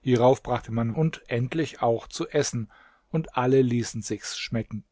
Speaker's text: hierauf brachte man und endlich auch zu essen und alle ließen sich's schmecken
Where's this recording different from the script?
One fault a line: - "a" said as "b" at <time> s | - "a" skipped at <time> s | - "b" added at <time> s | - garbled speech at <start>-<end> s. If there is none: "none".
none